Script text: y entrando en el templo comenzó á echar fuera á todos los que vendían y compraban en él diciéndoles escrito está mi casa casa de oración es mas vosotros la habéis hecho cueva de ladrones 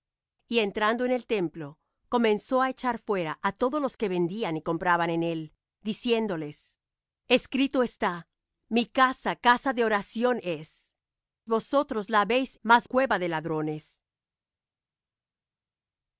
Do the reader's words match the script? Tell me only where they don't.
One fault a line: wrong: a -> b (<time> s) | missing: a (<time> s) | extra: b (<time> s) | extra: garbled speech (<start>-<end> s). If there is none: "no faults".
missing: mas (10.9 s)
wrong: hecho -> mas (12.6 s)